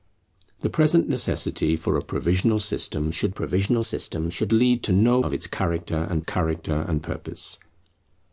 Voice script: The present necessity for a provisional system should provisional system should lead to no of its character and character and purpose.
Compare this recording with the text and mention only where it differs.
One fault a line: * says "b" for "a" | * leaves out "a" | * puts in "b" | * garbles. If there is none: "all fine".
all fine